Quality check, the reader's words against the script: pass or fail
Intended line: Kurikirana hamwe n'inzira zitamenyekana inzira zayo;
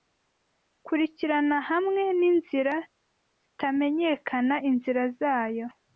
pass